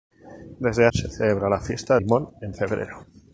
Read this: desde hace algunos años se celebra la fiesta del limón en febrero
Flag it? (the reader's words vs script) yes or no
yes